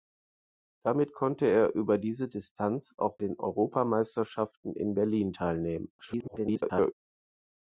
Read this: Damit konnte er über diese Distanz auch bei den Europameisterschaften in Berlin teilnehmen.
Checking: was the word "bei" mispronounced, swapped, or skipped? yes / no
yes